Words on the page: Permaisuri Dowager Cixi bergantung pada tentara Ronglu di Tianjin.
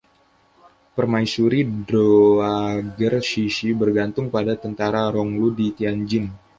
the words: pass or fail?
pass